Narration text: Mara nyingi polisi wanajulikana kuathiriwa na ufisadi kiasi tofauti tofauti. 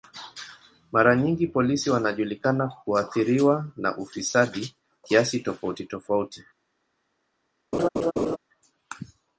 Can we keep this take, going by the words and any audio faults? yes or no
no